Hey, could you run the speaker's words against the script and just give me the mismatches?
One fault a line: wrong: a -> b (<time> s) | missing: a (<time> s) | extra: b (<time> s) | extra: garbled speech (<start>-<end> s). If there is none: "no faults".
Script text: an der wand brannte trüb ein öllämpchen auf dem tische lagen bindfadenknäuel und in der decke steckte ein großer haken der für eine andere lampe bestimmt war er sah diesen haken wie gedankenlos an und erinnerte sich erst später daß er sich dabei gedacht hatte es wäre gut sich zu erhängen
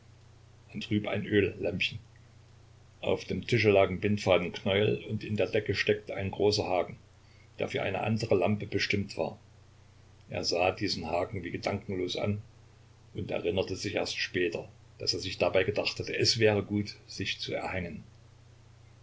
missing: der wand brannte (0.8 s)